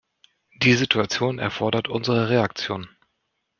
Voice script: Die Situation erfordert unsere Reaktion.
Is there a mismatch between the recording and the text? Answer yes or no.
no